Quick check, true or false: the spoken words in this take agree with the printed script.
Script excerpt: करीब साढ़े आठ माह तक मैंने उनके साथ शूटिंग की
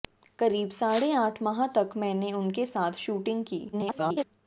false